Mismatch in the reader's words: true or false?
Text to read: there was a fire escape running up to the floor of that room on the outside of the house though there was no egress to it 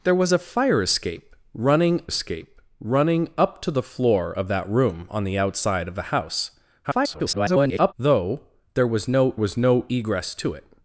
true